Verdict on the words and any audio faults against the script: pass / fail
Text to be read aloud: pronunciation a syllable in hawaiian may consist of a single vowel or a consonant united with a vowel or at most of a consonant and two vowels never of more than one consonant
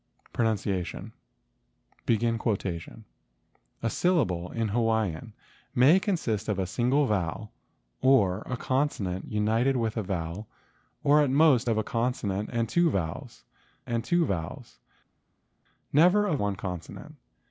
fail